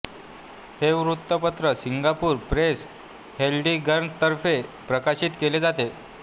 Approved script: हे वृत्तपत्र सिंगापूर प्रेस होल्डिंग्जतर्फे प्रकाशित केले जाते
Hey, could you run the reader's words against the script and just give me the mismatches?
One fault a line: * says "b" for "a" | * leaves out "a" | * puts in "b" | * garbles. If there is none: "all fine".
all fine